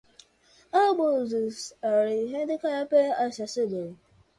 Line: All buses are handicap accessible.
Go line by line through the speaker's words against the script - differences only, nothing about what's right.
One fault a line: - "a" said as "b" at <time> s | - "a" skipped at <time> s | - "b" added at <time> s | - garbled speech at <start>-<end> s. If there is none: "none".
none